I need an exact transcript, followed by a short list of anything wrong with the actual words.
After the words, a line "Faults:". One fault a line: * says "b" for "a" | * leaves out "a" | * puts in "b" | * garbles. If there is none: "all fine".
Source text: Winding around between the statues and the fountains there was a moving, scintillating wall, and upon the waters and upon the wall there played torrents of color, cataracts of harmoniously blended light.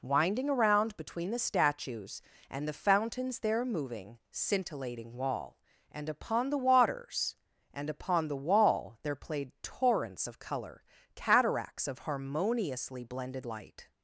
Winding around between the statues and the fountains there moving, scintillating wall, and upon the waters and upon the wall there played torrents of color, cataracts of harmoniously blended light.
Faults:
* leaves out "was a"